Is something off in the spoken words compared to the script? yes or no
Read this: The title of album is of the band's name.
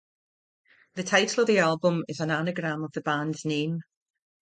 yes